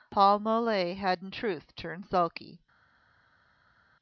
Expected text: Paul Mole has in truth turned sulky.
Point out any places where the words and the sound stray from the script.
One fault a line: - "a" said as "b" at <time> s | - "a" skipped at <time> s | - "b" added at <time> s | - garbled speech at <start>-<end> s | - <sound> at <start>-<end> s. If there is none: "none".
- "has" said as "had" at 0.9 s